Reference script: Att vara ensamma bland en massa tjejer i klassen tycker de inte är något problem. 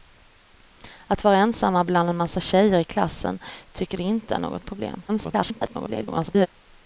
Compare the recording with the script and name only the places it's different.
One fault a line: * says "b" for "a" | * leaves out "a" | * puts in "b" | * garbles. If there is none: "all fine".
* garbles